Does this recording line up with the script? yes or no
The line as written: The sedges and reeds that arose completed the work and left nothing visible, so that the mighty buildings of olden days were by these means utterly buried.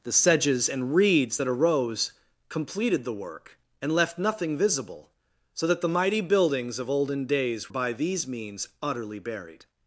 no